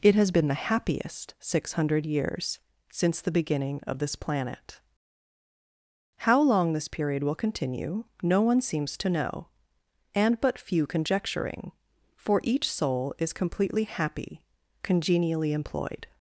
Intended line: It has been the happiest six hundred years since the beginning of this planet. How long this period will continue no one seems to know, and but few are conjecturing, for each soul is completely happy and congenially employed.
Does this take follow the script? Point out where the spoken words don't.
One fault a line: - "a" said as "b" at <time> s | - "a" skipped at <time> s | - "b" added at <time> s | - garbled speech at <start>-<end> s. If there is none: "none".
- "are" skipped at 10.9 s
- "and" skipped at 14.4 s